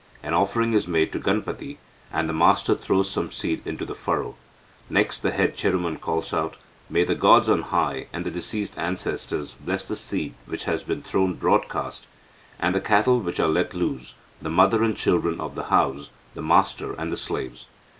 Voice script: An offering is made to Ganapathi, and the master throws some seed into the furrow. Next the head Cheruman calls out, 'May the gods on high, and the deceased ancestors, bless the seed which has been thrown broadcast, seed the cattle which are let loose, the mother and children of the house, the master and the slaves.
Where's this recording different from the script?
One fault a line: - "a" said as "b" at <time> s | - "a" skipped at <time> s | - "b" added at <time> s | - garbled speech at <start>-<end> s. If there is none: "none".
- "seed" said as "and" at 12.6 s